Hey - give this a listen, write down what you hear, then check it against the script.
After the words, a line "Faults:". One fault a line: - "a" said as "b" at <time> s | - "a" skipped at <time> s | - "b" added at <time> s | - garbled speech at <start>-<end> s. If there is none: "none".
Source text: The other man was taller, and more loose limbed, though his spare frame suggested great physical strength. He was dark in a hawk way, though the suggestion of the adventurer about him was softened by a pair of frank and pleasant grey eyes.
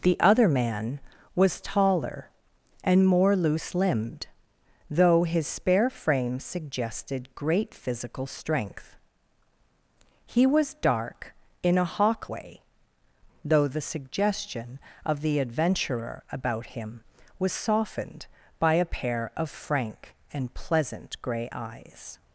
The other man was taller, and more loose limbed, though his spare frame suggested great physical strength. He was dark in a hawk way, though the suggestion of the adventurer about him was softened by a pair of frank and pleasant grey eyes.
Faults:
none